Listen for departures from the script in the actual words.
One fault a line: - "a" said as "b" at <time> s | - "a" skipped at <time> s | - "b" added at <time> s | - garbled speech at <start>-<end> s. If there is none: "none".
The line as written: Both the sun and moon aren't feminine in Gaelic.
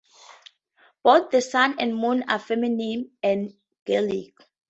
- "aren't" said as "are" at 2.3 s